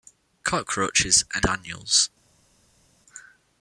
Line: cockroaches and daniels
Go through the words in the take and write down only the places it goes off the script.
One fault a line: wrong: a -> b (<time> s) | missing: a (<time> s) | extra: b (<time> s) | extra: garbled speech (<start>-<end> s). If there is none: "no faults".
no faults